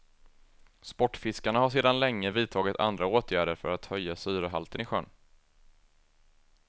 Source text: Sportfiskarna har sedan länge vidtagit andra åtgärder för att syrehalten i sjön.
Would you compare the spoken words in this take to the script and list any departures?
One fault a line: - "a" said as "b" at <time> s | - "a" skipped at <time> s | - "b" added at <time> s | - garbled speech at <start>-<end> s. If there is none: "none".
- "höja" added at 3.9 s